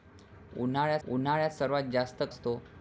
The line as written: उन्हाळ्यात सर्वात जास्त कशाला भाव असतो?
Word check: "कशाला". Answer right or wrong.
wrong